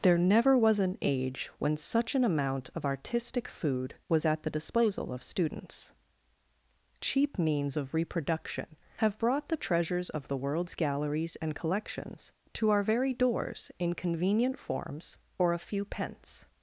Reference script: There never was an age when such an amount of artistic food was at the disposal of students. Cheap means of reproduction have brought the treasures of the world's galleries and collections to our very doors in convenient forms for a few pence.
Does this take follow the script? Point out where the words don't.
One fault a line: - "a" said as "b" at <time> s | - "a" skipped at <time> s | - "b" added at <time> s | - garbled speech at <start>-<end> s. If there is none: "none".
- "for" said as "or" at 15.4 s